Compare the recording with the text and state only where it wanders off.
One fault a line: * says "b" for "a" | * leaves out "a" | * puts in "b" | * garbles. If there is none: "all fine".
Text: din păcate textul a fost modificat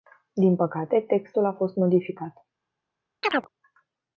all fine